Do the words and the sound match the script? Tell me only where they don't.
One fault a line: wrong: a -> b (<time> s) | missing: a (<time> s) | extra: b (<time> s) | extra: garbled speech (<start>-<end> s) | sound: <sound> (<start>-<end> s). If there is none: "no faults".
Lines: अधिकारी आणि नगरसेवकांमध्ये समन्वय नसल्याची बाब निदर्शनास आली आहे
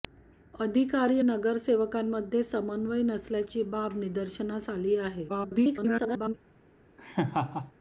missing: आणि (1.2 s)
extra: garbled speech (5.3-6.3 s)
sound: laugh (7.0-7.7 s)